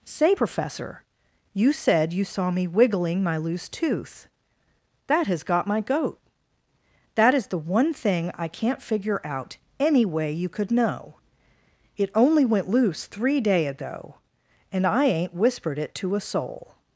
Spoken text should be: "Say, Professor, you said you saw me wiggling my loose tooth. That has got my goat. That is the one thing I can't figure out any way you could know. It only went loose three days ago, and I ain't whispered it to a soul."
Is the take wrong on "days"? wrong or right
wrong